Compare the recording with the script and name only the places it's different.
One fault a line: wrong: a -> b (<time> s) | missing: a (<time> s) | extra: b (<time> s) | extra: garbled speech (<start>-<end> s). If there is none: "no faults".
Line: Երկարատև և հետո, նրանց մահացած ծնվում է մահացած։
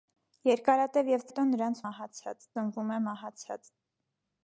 no faults